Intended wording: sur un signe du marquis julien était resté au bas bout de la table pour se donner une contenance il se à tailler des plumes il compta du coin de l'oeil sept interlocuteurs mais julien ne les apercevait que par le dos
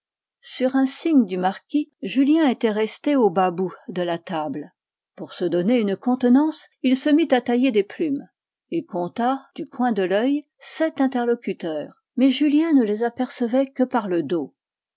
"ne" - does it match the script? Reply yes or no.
yes